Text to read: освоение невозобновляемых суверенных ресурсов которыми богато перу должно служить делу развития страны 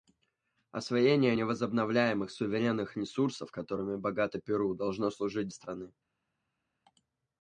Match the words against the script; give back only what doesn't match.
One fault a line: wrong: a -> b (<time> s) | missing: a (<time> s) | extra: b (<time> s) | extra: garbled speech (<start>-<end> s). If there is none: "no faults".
missing: делу развития (5.5 s)